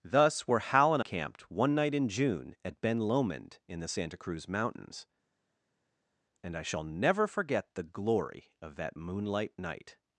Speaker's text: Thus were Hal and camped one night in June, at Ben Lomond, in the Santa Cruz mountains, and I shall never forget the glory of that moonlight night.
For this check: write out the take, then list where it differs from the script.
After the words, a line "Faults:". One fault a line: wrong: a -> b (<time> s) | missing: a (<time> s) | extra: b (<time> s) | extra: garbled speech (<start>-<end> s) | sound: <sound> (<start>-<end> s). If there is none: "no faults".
Thus were Hal and camped one night in June, at Ben Lomond, in the Santa Cruz mountains, and I shall never forget the glory of that moonlight night.
Faults:
no faults